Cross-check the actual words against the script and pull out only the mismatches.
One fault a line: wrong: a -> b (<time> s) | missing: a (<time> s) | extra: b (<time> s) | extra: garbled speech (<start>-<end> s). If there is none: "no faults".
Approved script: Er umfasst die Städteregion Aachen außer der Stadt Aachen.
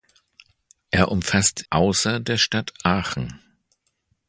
missing: die Städteregion Aachen (1.6 s)